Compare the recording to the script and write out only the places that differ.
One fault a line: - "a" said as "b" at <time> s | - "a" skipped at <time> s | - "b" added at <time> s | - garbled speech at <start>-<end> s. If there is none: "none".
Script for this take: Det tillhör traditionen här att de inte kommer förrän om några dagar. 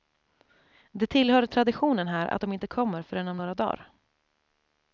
none